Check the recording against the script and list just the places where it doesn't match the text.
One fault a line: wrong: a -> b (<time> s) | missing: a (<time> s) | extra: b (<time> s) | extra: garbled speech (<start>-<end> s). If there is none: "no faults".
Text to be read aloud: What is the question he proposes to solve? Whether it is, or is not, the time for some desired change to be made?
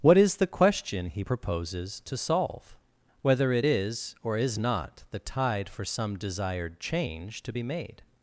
wrong: time -> tide (5.2 s)